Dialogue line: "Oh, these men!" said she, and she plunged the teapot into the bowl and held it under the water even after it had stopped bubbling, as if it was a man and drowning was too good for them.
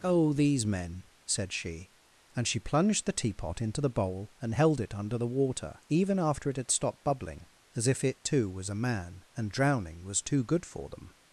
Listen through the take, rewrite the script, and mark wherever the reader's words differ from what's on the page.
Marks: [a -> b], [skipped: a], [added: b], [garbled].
"Oh, these men!" said she, and she plunged the teapot into the bowl and held it under the water even after it had stopped bubbling, as if it [added: too] was a man and drowning was too good for them.